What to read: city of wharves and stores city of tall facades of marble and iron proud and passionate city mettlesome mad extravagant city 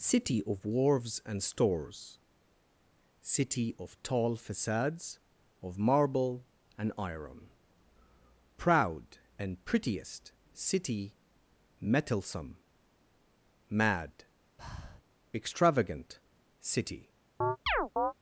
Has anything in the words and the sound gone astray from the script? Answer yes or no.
yes